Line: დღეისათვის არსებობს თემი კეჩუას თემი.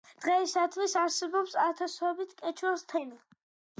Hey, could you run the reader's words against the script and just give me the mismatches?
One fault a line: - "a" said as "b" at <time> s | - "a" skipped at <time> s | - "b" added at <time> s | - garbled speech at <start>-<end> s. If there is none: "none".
- "თემი" said as "ათასობით" at 1.7 s